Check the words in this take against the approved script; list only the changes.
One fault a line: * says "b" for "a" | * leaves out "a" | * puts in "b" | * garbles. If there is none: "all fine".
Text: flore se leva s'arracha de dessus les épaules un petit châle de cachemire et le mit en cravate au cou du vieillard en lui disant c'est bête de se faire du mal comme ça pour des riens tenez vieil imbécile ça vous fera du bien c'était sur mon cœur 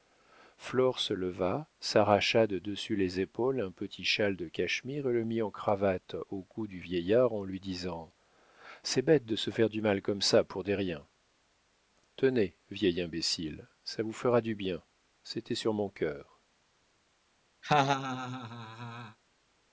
all fine